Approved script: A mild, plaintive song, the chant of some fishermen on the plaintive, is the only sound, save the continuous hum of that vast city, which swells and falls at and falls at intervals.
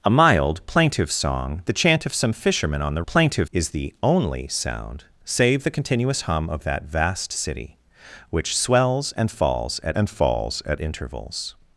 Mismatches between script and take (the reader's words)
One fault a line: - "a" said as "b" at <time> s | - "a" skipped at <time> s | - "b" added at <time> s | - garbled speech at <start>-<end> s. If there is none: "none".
none